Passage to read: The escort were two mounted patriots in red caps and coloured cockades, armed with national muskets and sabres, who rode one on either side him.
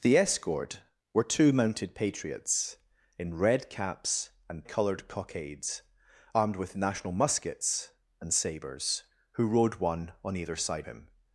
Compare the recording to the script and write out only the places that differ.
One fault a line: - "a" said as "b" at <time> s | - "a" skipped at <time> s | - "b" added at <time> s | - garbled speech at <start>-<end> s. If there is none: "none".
none